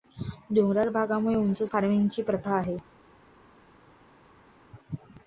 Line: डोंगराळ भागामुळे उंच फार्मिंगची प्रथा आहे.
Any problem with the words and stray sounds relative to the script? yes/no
no